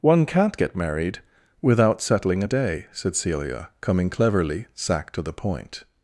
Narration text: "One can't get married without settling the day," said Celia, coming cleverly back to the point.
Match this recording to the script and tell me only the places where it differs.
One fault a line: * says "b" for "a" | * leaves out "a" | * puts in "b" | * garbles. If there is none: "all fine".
* says "a" for "the"
* says "sack" for "back"